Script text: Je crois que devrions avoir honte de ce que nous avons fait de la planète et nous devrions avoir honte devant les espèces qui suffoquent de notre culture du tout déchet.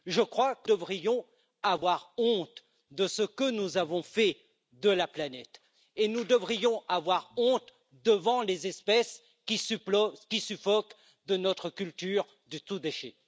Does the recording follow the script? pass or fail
pass